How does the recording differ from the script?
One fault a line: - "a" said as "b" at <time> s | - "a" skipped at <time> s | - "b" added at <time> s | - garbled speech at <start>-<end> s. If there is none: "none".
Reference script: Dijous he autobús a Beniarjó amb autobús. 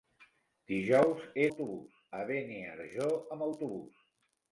none